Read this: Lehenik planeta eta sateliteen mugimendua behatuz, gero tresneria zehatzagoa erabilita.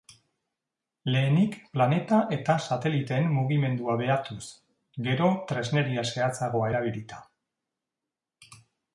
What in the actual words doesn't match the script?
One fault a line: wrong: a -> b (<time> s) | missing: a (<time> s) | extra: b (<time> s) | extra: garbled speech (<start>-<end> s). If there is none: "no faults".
no faults